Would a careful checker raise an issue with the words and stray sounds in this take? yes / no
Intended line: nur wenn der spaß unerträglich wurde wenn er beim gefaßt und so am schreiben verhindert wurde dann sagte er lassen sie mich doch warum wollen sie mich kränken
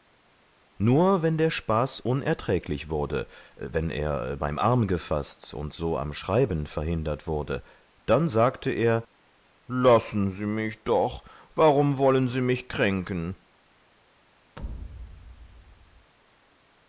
yes